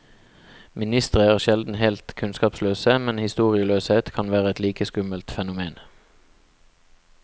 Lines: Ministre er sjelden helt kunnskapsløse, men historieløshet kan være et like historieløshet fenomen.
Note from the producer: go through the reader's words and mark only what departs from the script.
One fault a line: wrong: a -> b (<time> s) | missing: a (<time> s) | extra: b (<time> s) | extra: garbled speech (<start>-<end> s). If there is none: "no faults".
wrong: historieløshet -> skummelt (4.9 s)